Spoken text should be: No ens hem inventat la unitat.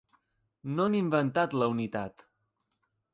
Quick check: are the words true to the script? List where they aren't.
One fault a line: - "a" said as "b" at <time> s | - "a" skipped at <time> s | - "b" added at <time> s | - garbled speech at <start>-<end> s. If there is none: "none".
- "ens" skipped at 0.9 s